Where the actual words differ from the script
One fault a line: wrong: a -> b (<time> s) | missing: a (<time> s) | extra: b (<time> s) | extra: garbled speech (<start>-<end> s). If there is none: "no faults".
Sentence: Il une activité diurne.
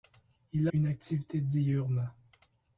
no faults